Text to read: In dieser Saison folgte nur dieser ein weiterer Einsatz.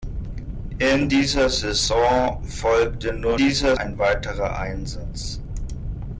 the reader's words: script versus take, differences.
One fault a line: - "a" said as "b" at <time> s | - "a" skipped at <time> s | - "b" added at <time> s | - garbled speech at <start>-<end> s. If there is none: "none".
none